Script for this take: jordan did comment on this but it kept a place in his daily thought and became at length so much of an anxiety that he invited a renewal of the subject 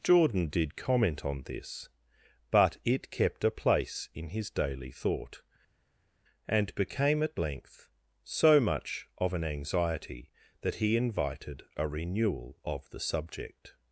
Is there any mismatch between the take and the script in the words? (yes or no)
no